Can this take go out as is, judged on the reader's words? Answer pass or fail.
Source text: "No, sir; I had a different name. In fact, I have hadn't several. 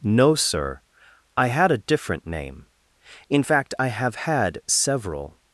fail